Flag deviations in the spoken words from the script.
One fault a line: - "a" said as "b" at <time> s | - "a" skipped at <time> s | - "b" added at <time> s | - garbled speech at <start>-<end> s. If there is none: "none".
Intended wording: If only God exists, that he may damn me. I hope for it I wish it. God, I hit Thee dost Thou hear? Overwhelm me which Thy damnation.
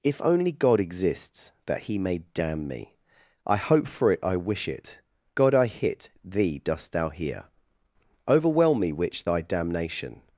none